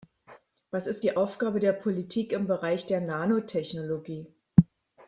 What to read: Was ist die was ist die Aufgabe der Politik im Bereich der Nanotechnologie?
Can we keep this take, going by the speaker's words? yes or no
no